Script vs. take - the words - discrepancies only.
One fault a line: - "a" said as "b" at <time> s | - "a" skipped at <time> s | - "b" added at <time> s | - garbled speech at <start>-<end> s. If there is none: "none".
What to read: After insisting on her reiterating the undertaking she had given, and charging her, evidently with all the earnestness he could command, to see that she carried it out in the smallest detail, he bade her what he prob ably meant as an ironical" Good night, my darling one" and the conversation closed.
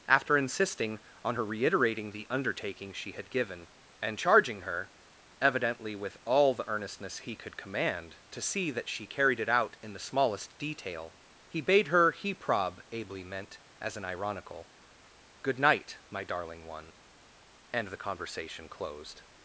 - "what" skipped at 12.1 s